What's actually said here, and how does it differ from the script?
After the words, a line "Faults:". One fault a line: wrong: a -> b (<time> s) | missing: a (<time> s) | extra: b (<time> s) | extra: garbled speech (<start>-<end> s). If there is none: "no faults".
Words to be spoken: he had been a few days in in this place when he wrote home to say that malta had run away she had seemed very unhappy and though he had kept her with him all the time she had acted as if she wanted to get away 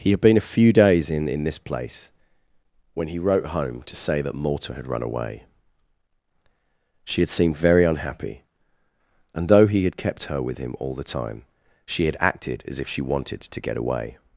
he had been a few days in in this place when he wrote home to say that malta had run away she had seemed very unhappy and though he had kept her with him all the time she had acted as if she wanted to get away
Faults:
no faults